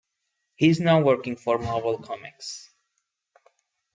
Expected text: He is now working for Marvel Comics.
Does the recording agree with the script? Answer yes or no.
yes